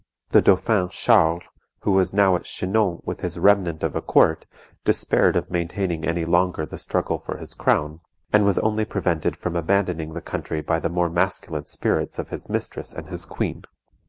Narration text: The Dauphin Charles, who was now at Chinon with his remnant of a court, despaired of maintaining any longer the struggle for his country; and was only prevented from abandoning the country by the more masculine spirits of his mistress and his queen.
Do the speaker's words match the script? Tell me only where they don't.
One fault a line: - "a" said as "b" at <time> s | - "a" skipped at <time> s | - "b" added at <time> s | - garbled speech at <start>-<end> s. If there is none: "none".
- "country" said as "crown" at 7.5 s